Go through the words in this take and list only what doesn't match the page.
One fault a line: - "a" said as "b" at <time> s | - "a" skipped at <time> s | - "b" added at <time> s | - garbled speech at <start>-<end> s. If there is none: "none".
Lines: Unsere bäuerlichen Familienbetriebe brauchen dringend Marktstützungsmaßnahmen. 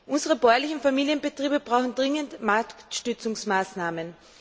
none